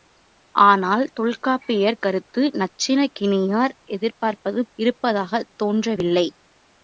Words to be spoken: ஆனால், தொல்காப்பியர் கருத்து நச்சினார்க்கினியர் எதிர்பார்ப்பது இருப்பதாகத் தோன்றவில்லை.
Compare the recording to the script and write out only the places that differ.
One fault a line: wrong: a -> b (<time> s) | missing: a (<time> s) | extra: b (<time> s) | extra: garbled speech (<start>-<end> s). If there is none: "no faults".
no faults